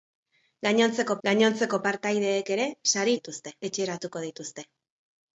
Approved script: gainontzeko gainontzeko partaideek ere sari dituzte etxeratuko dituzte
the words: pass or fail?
pass